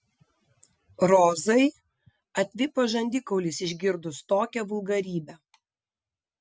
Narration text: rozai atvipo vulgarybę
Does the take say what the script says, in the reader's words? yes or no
no